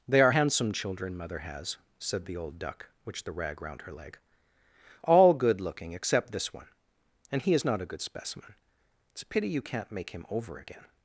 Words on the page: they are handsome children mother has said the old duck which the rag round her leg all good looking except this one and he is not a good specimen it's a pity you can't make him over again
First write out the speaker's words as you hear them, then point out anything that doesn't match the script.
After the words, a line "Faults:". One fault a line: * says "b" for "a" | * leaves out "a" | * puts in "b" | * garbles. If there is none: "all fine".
they are handsome children mother has said the old duck which the rag round her leg all good looking except this one and he is not a good specimen it's a pity you can't make him over again
Faults:
all fine